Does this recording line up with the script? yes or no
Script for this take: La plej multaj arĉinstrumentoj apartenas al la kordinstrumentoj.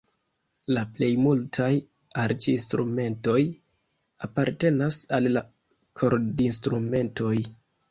yes